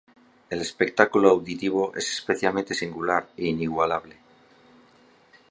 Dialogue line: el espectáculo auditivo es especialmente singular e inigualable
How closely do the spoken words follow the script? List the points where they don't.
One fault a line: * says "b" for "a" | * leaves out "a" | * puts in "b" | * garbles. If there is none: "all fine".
all fine